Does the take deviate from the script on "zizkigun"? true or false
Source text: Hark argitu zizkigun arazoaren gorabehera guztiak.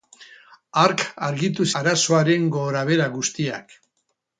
true